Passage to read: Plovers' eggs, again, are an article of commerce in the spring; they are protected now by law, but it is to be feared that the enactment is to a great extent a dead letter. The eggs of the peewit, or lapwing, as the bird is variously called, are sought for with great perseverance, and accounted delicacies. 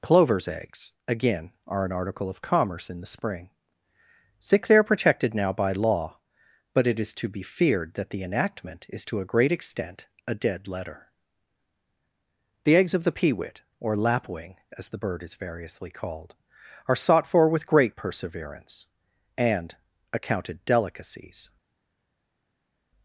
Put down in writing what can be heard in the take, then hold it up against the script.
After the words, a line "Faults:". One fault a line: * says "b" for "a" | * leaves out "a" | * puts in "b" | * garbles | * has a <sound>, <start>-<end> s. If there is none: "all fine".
Plovers' eggs, again, are an article of commerce in the spring; sick they are protected now by law, but it is to be feared that the enactment is to a great extent a dead letter. The eggs of the peewit, or lapwing, as the bird is variously called, are sought for with great perseverance, and accounted delicacies.
Faults:
* puts in "sick"